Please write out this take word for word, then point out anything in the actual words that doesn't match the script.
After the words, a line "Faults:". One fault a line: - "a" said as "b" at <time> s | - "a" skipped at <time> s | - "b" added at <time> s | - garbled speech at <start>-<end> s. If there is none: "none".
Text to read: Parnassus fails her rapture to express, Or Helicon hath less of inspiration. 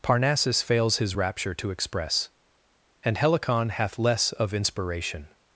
Parnassus fails his rapture to express, And Helicon hath less of inspiration.
Faults:
- "her" said as "his" at 1.0 s
- "Or" said as "And" at 3.0 s